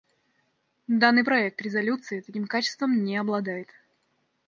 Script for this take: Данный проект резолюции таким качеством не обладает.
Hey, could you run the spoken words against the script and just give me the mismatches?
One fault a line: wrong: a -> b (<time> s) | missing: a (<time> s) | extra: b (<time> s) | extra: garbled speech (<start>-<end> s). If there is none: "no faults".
no faults